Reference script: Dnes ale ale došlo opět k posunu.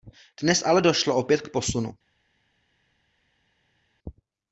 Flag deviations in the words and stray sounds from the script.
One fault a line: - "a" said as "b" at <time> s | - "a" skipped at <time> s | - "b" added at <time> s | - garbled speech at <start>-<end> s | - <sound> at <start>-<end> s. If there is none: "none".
- "ale" skipped at 0.8 s